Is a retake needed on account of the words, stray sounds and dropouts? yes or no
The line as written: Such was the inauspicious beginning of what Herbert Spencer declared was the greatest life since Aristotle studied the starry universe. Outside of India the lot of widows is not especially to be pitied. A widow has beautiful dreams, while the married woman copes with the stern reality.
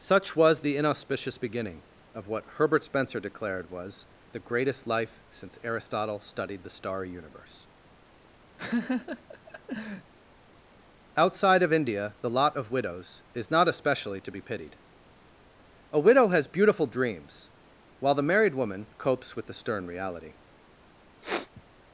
yes